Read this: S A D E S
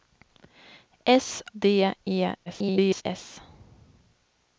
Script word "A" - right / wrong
wrong